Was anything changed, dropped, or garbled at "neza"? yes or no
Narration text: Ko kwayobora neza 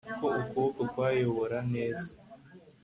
no